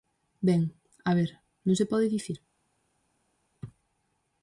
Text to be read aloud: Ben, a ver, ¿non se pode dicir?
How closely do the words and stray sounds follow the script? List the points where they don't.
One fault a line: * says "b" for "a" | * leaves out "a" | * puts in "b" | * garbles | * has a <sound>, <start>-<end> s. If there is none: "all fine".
all fine